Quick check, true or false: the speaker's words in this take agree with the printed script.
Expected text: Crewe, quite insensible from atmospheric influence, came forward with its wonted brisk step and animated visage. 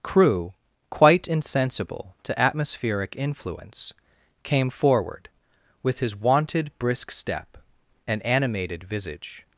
false